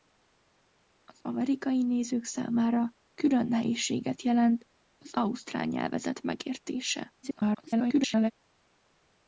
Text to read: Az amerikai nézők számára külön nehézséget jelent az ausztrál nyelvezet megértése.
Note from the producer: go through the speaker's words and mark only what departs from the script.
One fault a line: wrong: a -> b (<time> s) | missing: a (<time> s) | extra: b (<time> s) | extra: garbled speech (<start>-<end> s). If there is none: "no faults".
extra: garbled speech (7.2-8.3 s)